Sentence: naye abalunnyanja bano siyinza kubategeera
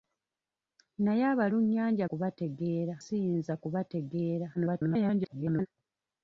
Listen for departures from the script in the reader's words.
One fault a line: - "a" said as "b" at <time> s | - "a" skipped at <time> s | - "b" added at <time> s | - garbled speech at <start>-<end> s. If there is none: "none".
- "bano" said as "kubategeera" at 2.1 s
- garbled speech at 4.5-5.7 s